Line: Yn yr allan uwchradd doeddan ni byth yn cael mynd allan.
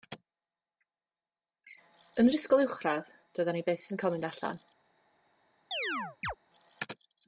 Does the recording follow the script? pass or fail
fail